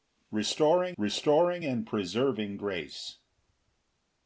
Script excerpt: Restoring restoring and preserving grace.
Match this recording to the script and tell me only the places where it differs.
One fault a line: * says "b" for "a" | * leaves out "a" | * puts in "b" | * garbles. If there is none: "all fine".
all fine